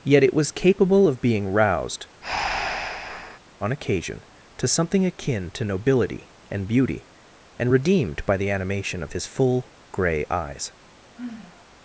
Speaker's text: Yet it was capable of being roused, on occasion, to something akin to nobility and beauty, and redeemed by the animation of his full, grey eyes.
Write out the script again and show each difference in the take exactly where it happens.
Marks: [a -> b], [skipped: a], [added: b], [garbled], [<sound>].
Yet it was capable of being roused, [breath] on occasion, to something akin to nobility and beauty, and redeemed by the animation of his full, grey eyes. [sigh]